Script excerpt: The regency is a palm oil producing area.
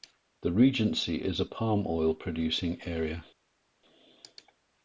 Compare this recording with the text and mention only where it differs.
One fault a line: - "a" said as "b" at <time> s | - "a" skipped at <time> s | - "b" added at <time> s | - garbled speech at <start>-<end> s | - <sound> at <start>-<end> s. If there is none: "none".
none